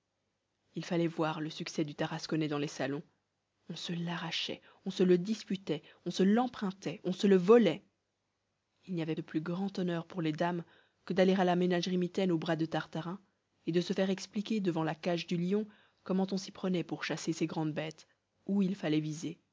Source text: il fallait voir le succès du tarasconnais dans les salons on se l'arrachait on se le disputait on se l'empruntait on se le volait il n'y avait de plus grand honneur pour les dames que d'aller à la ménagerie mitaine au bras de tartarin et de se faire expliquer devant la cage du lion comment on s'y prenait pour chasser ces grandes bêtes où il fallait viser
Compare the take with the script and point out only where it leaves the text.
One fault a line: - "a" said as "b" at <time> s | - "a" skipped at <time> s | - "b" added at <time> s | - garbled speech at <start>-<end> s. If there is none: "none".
none